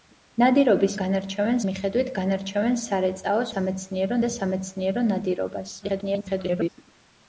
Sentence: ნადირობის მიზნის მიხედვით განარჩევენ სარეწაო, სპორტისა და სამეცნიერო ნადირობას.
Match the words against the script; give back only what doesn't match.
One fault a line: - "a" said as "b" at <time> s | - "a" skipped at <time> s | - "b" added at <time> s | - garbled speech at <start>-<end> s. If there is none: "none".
- "მიზნის" said as "განარჩევენ" at 1.0 s
- "სპორტისა" said as "სამეცნიერო" at 3.5 s
- garbled speech at 5.8-6.7 s